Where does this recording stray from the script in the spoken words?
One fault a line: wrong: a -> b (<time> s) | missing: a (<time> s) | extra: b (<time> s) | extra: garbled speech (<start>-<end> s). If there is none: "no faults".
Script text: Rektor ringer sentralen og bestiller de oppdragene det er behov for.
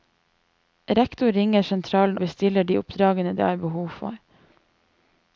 missing: og (2.2 s)